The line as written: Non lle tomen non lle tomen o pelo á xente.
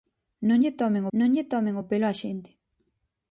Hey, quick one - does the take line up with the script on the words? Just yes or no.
yes